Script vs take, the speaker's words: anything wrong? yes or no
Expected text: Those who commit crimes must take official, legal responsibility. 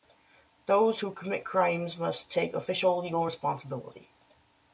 no